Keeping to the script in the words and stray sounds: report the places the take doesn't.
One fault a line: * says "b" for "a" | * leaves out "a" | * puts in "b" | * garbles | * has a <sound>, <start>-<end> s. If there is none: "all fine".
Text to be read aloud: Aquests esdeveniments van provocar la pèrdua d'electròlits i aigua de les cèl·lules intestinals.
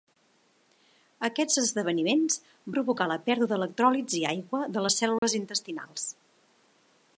* leaves out "van"
* has a dropout, 5.2-5.2 s